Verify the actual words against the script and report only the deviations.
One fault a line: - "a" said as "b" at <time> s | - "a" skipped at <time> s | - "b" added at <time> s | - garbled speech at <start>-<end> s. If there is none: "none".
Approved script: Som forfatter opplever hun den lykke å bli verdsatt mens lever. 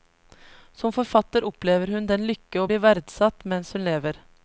- "hun" added at 3.8 s